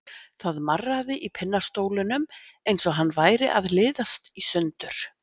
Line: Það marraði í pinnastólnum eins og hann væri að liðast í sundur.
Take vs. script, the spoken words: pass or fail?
pass